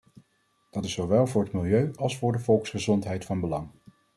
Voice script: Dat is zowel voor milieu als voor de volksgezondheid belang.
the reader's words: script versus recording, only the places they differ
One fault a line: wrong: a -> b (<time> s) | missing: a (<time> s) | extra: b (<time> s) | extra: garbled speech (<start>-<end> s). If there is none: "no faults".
extra: het (1.4 s)
extra: van (3.2 s)